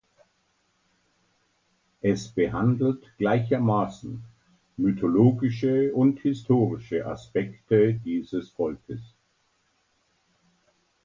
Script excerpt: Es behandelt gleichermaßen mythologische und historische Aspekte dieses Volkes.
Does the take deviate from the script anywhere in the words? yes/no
no